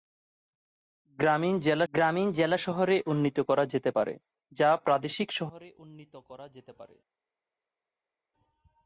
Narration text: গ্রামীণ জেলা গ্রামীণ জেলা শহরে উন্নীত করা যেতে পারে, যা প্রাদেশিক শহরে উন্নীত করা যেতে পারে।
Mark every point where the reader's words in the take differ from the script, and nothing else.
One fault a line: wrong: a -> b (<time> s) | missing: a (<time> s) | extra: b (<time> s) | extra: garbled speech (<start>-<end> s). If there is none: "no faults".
no faults